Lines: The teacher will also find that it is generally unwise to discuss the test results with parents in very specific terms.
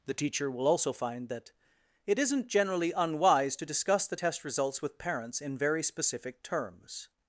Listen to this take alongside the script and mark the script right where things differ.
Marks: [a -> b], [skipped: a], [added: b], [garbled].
The teacher will also find that it [is -> isn't] generally unwise to discuss the test results with parents in very specific terms.